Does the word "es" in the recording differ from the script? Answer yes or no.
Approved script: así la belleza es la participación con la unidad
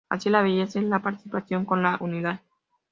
no